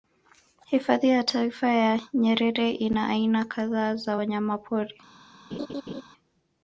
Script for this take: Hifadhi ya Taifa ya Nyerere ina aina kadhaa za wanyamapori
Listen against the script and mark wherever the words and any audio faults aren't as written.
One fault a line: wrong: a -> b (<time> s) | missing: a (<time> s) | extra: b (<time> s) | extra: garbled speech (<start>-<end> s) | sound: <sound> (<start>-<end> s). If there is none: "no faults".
sound: laugh (5.5-6.0 s)